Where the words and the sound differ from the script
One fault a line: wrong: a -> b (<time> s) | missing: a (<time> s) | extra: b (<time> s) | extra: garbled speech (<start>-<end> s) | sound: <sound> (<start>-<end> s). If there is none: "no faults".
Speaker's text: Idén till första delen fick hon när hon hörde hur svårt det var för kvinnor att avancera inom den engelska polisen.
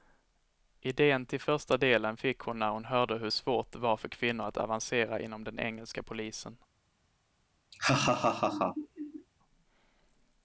sound: laugh (7.7-9.3 s)